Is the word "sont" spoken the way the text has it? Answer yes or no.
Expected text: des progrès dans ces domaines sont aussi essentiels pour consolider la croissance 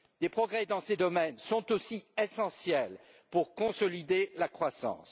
yes